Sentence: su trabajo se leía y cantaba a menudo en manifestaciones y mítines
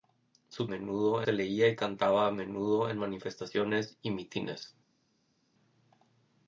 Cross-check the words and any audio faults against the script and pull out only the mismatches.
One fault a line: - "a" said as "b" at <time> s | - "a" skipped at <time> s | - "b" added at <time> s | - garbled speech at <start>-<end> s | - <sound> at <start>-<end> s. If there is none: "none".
- "trabajo" said as "menudo" at 0.7 s